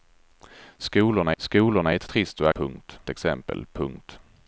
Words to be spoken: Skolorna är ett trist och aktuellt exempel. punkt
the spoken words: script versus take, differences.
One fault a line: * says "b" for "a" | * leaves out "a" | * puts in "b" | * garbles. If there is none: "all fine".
* puts in "skolorna"
* says "punkt" for "aktuellt"